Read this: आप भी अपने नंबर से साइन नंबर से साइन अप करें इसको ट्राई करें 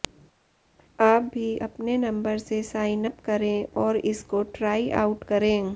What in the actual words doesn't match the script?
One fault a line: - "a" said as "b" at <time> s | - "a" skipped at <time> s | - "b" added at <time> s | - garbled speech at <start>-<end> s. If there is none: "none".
- "नंबर से साइन" skipped at 3.1 s
- "और" added at 3.8 s
- "आउट" added at 5.0 s